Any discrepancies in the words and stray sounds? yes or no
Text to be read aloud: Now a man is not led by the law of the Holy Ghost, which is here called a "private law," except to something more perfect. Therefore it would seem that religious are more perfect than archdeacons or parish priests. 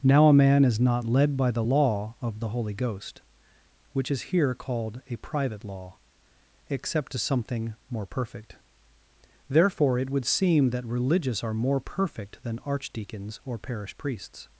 no